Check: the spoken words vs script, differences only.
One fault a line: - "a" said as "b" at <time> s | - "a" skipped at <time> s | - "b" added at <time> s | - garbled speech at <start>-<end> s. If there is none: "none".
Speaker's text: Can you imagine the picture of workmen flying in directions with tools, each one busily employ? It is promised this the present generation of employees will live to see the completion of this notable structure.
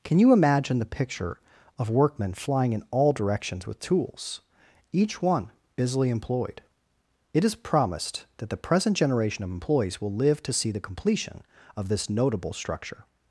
- "all" added at 2.9 s
- "employ" said as "employed" at 6.1 s
- "this" said as "that" at 8.4 s